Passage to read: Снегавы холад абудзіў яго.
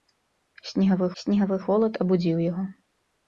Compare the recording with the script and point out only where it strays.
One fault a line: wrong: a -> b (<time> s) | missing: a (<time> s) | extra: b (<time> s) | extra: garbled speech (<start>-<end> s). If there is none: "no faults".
extra: снегавы (1.2 s)